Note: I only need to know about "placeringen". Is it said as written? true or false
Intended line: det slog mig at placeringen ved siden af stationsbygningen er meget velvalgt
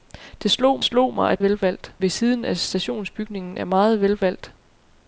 false